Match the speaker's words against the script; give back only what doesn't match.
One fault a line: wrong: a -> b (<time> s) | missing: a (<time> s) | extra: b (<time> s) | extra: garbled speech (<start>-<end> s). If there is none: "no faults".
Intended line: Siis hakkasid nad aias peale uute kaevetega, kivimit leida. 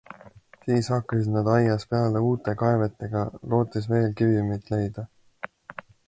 extra: lootes veel (3.5 s)